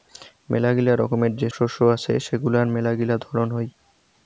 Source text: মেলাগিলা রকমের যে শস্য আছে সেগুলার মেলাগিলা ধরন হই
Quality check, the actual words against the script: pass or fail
pass